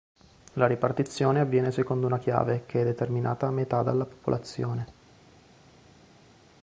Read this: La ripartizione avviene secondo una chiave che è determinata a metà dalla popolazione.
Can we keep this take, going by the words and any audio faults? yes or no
yes